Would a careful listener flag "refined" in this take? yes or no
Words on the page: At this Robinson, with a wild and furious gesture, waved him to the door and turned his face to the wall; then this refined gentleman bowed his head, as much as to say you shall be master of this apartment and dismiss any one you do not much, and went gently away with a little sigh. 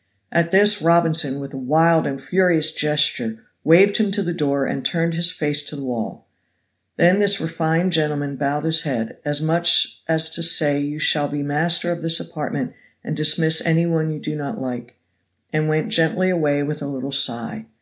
no